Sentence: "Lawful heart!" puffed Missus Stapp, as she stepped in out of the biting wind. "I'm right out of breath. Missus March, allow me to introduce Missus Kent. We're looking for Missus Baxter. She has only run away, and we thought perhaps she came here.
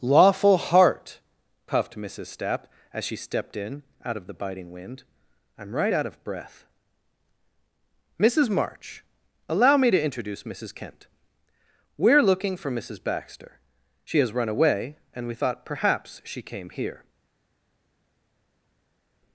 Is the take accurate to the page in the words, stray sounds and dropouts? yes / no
no